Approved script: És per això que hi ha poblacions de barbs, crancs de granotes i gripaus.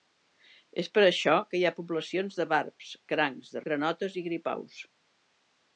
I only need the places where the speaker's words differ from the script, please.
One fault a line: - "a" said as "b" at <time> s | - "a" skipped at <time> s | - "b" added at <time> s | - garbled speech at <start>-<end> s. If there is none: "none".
none